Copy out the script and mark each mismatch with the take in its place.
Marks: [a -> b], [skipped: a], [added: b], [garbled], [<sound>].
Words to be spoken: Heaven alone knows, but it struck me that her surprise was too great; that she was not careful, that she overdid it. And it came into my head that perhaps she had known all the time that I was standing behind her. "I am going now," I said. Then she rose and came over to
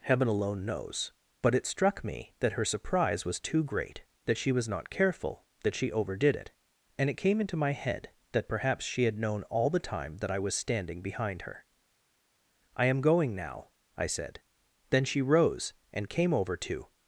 Heaven alone knows, but it struck me that her surprise was too great; that she was not careful, that she overdid it. And it came into my head that perhaps she had known all the time that I was standing behind her. "I am going now," I said. Then she rose and came over to